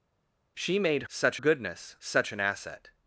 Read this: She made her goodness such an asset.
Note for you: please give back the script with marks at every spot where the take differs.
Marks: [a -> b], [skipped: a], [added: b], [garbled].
She made [her -> such] goodness such an asset.